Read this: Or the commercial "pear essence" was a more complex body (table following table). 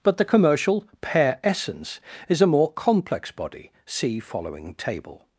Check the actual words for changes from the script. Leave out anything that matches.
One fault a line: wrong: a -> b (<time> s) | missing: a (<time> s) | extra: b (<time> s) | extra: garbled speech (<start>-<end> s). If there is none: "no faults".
wrong: Or -> But (0.0 s)
wrong: was -> is (2.3 s)
wrong: table -> see (3.9 s)